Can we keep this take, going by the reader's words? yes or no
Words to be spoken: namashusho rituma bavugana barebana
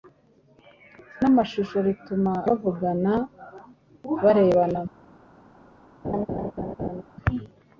yes